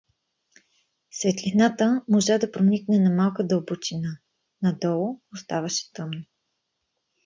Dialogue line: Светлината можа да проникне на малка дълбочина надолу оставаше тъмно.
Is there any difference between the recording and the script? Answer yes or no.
no